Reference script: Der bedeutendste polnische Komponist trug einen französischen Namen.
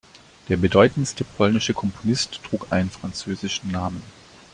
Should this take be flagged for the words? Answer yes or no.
no